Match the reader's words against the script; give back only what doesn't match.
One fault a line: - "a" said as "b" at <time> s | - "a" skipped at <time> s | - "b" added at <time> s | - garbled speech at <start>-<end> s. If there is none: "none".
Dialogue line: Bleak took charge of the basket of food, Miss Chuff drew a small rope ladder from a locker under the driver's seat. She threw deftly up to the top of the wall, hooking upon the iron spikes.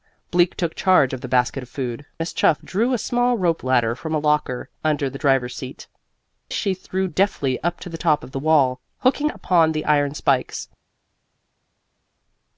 none